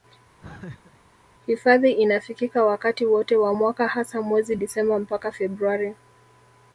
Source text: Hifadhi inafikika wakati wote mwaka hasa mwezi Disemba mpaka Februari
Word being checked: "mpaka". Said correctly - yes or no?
yes